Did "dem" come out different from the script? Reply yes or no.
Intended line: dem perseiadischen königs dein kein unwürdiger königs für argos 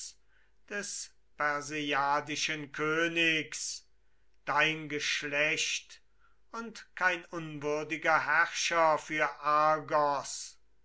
yes